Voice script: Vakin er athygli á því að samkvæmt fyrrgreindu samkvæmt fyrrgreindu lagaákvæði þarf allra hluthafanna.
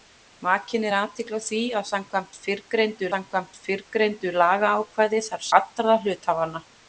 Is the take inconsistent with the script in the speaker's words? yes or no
no